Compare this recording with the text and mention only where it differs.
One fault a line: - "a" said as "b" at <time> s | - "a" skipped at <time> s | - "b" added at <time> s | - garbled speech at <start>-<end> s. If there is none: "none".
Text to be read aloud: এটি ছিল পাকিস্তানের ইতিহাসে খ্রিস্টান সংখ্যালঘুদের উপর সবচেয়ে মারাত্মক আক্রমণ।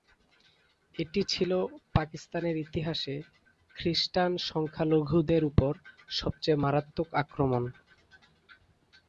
none